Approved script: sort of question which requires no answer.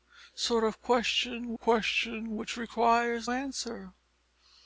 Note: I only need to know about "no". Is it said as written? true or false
false